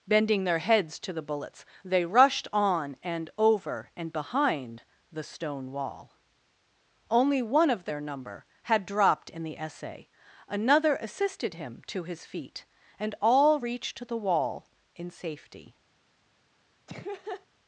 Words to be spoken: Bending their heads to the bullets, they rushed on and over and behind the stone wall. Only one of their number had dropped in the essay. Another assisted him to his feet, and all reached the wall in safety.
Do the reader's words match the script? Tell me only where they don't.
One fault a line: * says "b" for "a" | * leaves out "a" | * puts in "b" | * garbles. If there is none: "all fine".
all fine